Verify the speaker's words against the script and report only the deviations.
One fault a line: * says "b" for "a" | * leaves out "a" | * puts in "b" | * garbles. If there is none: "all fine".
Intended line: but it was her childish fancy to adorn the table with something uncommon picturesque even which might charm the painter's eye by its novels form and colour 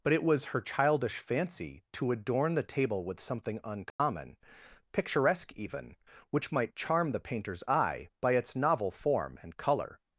* says "novel" for "novels"